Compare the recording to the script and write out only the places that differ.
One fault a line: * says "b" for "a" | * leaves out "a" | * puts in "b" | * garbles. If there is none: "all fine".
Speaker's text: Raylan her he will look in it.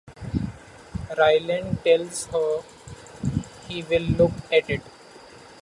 * puts in "tells"
* says "at" for "in"